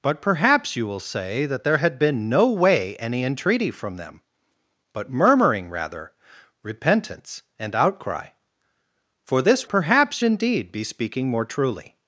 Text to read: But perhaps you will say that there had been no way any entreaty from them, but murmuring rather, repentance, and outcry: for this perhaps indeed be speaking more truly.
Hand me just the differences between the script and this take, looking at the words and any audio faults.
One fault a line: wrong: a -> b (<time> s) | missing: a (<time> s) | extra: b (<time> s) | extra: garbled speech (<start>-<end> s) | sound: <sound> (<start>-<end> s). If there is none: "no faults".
no faults